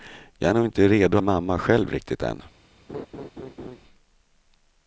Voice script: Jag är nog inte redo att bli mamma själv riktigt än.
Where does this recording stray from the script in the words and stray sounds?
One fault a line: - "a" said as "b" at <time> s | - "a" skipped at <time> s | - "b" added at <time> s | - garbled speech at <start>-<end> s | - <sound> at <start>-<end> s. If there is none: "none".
- "att bli" skipped at 1.2 s
- laugh at 2.9-3.8 s